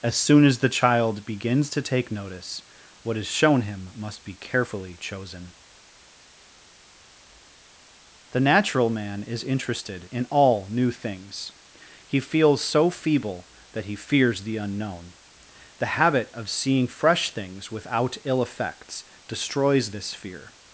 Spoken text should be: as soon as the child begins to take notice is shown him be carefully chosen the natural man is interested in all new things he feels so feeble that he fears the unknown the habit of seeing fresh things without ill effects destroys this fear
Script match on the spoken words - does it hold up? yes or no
no